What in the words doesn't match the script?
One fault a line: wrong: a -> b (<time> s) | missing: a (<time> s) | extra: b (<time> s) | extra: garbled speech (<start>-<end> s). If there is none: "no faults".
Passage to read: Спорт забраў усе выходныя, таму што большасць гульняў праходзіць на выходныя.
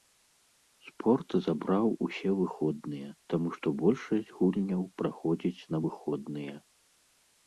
no faults